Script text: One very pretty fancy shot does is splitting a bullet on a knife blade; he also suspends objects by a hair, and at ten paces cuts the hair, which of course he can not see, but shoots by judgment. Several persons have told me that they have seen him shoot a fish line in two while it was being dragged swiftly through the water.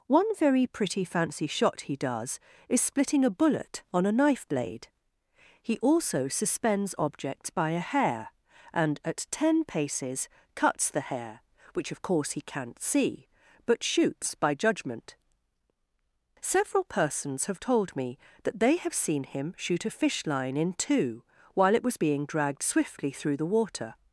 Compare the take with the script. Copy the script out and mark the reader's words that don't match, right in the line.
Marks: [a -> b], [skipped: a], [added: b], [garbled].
One very pretty fancy shot [added: he] does is splitting a bullet on a knife blade; he also suspends objects by a hair, and at ten paces cuts the hair, which of course he can not see, but shoots by judgment. Several persons have told me that they have seen him shoot a fish line in two while it was being dragged swiftly through the water.